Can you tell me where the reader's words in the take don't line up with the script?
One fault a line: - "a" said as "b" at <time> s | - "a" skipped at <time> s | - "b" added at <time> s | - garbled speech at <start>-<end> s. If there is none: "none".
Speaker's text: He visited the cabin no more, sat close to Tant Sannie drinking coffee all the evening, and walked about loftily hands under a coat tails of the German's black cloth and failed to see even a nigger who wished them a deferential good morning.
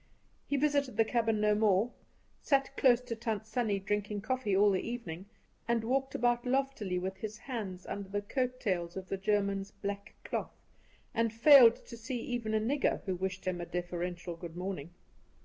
- "with his" added at 7.0 s
- "a" said as "the" at 8.1 s
- "them" said as "him" at 13.4 s